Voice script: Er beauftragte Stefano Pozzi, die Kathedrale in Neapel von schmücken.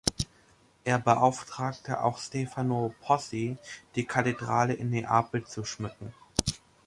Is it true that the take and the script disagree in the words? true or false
true